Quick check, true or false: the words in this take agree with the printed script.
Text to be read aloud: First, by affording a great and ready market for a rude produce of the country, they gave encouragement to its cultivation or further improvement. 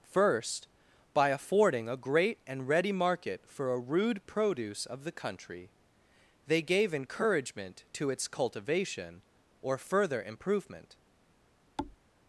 true